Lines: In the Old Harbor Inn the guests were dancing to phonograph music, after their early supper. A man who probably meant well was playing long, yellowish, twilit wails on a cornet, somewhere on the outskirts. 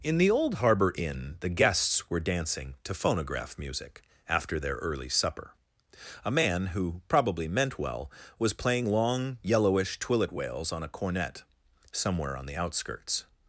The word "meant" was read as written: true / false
true